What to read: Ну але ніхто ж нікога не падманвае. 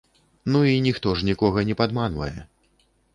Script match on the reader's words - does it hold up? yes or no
no